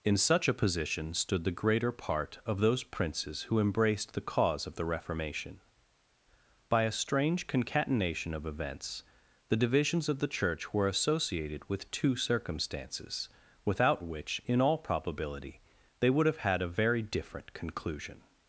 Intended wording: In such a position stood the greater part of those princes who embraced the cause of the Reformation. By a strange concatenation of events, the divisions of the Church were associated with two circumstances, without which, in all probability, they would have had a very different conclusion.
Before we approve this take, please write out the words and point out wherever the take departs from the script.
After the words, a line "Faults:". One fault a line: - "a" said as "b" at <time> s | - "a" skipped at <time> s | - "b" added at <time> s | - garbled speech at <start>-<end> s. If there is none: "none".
In such a position stood the greater part of those princes who embraced the cause of the Reformation. By a strange concatenation of events, the divisions of the Church were associated with two circumstances, without which, in all probability, they would have had a very different conclusion.
Faults:
none